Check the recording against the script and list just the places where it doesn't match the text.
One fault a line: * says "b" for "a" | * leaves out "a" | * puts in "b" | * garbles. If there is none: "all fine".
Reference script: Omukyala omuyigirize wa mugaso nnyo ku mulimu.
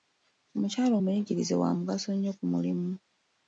all fine